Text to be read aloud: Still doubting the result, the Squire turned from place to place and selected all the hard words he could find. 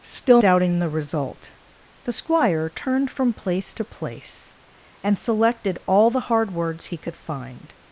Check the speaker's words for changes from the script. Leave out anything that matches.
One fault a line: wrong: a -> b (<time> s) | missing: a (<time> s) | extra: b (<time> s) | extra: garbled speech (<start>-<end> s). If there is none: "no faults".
no faults